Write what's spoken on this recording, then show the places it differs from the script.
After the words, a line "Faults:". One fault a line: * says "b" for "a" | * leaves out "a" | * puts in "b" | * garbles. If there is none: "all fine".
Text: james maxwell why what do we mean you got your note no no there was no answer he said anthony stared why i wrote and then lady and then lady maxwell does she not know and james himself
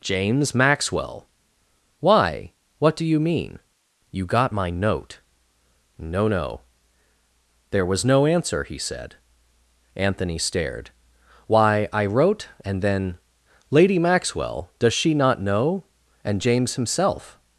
james maxwell why what do you mean you got my note no no there was no answer he said anthony stared why i wrote and then lady maxwell does she not know and james himself
Faults:
* says "you" for "we"
* says "my" for "your"
* leaves out "and then lady"